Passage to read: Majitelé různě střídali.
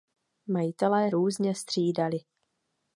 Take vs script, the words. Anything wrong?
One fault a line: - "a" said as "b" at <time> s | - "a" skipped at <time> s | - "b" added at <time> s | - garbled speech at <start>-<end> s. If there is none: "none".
none